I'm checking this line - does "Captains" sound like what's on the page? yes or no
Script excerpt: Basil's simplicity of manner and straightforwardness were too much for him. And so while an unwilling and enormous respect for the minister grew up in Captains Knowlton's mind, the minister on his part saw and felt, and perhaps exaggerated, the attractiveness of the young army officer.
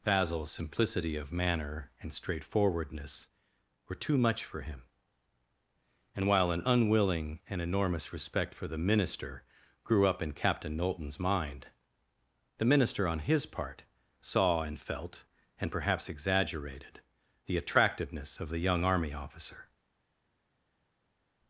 no